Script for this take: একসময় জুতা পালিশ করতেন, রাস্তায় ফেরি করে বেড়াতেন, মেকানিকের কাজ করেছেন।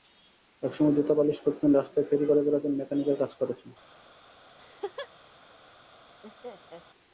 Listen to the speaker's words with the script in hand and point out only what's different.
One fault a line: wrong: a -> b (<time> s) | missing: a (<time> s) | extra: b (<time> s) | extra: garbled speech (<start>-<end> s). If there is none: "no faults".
no faults